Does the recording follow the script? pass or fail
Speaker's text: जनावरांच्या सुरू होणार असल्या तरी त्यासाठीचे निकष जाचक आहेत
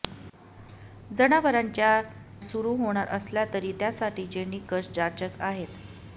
pass